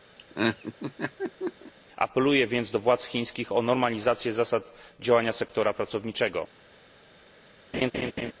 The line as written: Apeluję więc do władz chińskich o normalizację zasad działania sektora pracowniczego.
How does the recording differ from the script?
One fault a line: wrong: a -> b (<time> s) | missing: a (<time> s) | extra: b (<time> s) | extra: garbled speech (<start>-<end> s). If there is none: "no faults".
no faults